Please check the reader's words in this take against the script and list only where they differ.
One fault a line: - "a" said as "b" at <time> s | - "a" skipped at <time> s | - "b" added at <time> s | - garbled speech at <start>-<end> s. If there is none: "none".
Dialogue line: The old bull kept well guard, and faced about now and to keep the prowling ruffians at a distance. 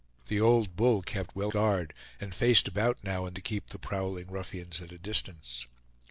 none